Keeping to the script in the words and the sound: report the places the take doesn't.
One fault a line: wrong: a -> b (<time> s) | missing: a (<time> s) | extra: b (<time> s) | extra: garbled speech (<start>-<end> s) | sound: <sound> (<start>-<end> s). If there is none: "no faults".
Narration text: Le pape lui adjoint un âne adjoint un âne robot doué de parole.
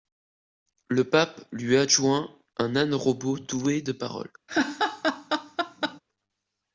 missing: adjoint un âne (2.9 s)
sound: laugh (4.5-6.0 s)